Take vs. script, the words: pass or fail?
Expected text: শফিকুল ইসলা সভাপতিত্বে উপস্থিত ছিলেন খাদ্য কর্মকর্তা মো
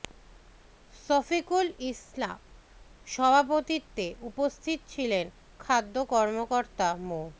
pass